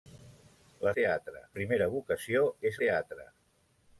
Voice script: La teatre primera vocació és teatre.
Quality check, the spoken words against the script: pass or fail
pass